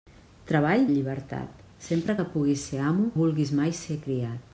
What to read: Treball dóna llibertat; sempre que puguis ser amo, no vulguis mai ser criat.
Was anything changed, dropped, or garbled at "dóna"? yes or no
yes